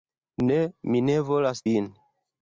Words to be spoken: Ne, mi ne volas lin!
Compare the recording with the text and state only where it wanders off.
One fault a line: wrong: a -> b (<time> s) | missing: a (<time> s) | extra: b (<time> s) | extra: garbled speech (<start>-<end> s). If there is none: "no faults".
no faults